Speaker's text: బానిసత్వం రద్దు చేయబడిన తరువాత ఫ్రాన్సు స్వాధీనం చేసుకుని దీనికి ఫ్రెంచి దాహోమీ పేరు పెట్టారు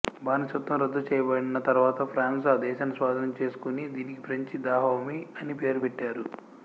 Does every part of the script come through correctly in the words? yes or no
no